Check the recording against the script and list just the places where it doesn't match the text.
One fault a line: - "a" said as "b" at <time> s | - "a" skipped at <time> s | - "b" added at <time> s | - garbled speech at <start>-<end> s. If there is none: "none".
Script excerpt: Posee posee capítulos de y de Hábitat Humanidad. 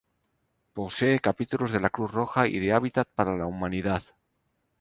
- "posee" skipped at 1.2 s
- "la Cruz Roja" added at 1.8 s
- "para la" added at 3.1 s